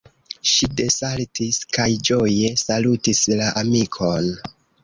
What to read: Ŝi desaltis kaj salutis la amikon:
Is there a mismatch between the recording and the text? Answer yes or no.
yes